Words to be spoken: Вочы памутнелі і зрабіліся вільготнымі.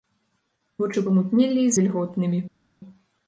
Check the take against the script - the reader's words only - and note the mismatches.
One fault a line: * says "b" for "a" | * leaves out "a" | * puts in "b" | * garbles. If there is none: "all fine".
* leaves out "зрабіліся"